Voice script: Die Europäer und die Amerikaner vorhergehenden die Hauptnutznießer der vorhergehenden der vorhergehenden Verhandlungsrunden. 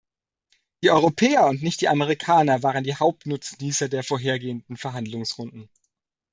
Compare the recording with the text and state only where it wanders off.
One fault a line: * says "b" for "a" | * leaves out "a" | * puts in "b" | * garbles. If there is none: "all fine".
* puts in "nicht"
* says "waren" for "vorhergehenden"
* leaves out "der vorhergehenden"